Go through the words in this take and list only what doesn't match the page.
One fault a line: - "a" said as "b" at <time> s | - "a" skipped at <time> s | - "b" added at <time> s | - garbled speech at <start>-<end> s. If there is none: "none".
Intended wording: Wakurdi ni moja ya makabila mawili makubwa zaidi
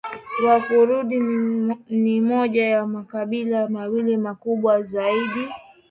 none